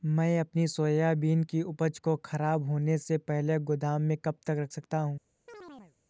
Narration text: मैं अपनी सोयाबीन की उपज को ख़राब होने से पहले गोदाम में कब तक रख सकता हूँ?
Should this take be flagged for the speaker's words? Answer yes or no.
no